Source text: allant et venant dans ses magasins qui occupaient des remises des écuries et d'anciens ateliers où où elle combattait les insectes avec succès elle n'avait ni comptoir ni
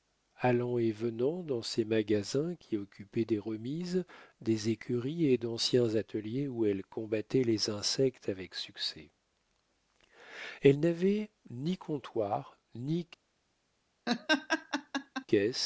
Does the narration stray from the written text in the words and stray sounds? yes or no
yes